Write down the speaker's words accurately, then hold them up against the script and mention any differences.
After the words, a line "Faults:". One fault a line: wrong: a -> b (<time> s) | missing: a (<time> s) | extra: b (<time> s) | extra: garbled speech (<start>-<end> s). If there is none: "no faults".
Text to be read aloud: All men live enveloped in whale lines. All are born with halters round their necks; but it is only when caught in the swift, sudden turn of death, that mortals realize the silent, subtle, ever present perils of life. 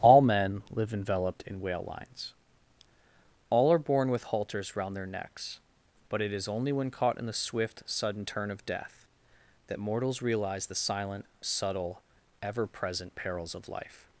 All men live enveloped in whale lines. All are born with halters round their necks; but it is only when caught in the swift, sudden turn of death, that mortals realize the silent, subtle, ever present perils of life.
Faults:
no faults